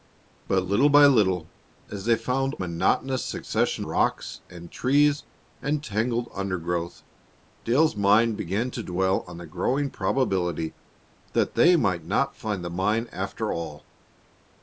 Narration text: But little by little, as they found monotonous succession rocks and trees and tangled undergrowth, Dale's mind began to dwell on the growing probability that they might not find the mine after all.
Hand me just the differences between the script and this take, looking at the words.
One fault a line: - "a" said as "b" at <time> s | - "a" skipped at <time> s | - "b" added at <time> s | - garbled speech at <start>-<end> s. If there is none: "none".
none